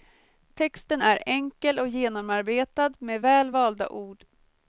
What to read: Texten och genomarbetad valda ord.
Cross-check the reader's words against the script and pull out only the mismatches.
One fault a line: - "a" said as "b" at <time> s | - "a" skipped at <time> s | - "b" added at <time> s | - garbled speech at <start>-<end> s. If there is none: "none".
- "är enkel" added at 1.0 s
- "med väl" added at 3.0 s